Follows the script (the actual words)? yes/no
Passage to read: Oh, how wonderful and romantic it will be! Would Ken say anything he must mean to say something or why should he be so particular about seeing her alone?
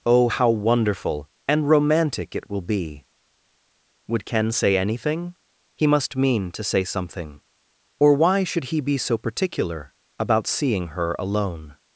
yes